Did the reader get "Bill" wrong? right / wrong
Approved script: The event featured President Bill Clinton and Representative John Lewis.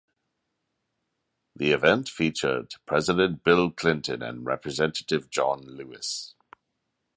right